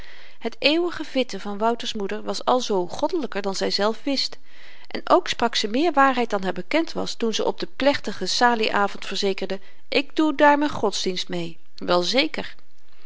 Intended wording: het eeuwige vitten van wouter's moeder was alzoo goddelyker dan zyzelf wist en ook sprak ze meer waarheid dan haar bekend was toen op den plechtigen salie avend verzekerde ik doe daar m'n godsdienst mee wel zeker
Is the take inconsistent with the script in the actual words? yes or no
yes